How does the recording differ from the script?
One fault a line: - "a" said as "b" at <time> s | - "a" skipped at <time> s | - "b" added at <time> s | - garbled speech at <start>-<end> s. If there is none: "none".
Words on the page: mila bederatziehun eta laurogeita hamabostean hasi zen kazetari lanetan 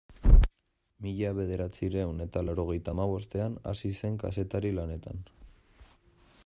none